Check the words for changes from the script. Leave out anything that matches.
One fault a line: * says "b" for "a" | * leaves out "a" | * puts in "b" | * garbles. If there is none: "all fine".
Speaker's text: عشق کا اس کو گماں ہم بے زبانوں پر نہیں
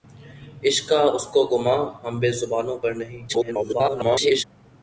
* garbles